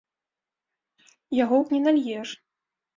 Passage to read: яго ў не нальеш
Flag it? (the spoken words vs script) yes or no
no